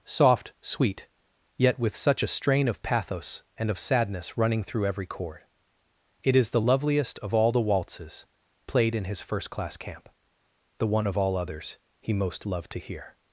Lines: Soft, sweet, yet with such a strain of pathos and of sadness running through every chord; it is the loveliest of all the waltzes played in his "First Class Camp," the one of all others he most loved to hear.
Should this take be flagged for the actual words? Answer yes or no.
no